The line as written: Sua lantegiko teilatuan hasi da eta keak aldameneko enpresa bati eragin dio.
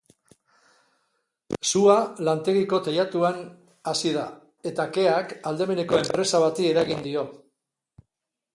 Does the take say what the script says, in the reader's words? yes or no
yes